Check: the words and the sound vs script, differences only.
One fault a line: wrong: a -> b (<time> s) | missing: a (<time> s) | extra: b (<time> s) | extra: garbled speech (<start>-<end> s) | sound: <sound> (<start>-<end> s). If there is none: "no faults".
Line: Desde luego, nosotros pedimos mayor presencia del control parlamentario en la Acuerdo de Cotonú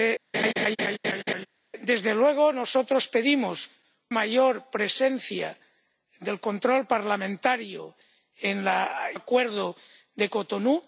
sound: laugh (0.3-1.5 s)